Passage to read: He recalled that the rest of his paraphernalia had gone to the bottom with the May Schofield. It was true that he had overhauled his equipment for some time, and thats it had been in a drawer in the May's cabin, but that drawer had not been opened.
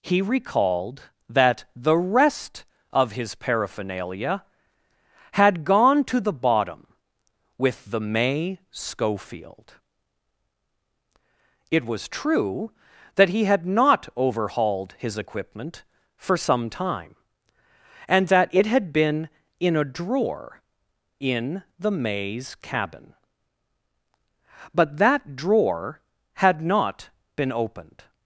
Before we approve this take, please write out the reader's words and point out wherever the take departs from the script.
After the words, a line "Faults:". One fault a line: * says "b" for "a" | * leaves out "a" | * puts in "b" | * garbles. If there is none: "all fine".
He recalled that the rest of his paraphernalia had gone to the bottom with the May Schofield. It was true that he had not overhauled his equipment for some time, and that it had been in a drawer in the May's cabin, but that drawer had not been opened.
Faults:
* puts in "not"
* says "that" for "thats"